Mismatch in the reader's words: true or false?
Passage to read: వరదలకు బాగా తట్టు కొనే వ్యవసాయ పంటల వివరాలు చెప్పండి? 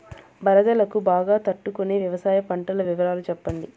false